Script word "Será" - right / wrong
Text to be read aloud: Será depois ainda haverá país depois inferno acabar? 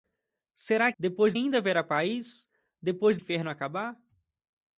right